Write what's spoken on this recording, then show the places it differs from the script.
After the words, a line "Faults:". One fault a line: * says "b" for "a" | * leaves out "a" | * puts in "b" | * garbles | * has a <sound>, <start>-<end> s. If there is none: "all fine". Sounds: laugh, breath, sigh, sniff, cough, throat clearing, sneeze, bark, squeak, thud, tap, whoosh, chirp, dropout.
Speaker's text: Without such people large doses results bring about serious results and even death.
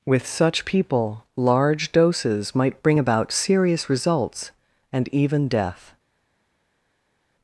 With such people large doses might bring about serious results and even death.
Faults:
* says "With" for "Without"
* says "might" for "results"